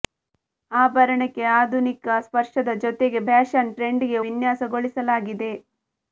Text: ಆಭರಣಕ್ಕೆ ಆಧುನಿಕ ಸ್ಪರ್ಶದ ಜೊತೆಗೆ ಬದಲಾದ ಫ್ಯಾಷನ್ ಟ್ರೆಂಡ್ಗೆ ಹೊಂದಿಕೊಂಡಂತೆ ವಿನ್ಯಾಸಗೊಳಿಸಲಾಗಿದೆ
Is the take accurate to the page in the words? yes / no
no